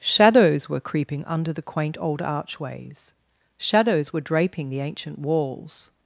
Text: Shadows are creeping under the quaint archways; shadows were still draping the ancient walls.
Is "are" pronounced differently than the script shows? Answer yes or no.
yes